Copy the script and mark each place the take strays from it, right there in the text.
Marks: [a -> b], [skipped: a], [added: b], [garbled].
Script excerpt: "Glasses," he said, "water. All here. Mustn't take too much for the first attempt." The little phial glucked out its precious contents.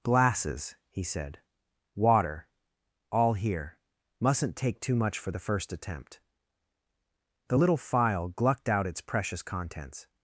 "Glasses," he said, "water. All here. Mustn't take too much for the first attempt." The little phial glucked out its precious contents.